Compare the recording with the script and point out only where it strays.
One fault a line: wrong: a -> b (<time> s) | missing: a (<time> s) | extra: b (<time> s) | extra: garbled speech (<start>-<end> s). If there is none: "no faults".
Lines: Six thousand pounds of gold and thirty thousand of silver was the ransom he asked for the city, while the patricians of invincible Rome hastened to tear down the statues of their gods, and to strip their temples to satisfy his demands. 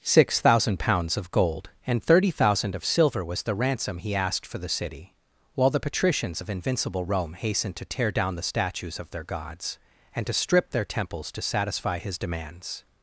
no faults